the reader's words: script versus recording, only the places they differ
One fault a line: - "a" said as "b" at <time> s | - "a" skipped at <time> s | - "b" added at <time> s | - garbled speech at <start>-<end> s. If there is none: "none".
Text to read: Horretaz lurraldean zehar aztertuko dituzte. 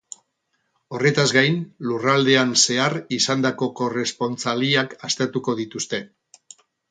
- "gain" added at 1.4 s
- "izandako korrespontsaliak" added at 3.2 s